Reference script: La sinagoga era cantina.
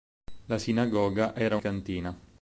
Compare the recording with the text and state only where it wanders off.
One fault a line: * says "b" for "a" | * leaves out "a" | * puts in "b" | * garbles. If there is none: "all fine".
all fine